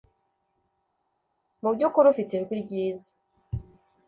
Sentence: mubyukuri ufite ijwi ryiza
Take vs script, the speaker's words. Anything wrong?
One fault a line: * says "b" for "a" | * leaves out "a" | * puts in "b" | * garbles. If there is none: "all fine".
all fine